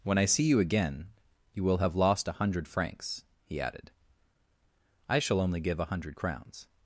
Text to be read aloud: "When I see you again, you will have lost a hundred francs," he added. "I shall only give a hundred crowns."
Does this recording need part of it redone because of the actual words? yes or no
no